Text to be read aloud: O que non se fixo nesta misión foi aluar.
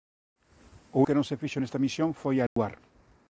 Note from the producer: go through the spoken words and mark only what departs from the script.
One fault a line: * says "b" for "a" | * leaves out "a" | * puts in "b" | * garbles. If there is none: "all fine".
all fine